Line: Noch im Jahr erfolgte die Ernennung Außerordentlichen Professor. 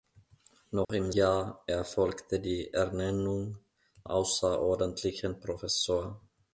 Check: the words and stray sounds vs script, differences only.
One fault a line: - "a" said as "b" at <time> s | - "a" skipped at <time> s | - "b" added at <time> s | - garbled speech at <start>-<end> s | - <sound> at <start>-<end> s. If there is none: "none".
- dropout at 0.8-0.9 s